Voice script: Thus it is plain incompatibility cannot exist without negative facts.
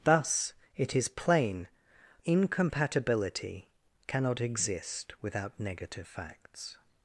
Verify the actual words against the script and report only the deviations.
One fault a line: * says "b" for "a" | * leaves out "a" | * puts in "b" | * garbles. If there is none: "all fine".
all fine